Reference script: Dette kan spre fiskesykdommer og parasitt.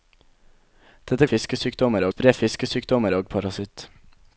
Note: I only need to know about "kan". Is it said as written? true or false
false